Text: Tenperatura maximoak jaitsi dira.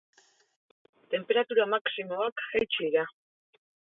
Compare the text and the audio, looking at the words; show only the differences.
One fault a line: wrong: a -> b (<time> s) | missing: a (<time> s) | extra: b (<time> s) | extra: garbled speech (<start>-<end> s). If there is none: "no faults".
no faults